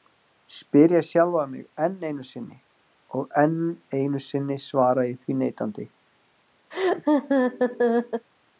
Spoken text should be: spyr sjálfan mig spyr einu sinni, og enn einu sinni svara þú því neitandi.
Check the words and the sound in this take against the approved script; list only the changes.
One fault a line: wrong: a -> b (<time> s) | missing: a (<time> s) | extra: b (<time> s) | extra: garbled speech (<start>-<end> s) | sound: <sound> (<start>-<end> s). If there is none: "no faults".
extra: ég (0.9 s)
wrong: spyr -> enn (1.9 s)
wrong: þú -> ég (5.1 s)
sound: laugh (6.7-8.3 s)